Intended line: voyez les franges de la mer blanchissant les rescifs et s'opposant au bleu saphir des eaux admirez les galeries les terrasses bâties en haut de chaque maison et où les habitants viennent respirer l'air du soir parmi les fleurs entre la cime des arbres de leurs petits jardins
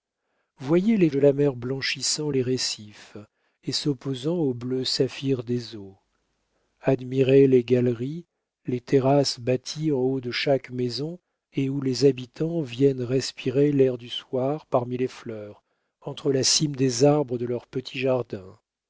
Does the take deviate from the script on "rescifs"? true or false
false